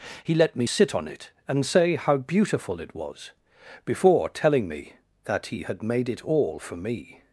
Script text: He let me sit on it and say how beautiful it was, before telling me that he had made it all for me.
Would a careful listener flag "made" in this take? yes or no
no